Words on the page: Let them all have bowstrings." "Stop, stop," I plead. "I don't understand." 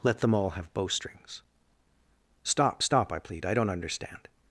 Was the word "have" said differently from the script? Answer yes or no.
no